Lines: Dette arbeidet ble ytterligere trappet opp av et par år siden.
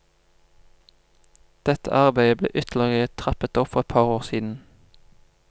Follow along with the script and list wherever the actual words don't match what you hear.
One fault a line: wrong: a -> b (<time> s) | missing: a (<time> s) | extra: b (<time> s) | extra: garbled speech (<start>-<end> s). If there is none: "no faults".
wrong: av -> for (3.8 s)